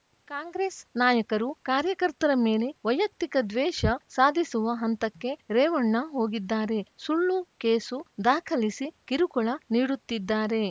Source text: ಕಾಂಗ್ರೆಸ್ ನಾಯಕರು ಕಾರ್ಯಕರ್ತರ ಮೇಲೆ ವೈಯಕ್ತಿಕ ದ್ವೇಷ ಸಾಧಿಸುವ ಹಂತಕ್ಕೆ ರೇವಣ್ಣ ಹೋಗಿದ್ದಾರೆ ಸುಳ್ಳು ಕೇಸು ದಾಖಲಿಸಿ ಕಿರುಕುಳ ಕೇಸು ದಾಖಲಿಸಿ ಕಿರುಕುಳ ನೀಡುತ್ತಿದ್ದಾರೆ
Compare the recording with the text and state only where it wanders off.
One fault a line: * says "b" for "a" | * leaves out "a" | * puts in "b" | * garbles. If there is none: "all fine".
* leaves out "ಕೇಸು ದಾಖಲಿಸಿ ಕಿರುಕುಳ"